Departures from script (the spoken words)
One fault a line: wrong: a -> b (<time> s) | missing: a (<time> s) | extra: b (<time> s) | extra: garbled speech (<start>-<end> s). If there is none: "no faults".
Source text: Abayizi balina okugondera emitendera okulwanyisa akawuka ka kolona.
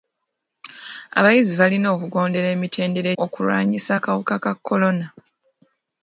no faults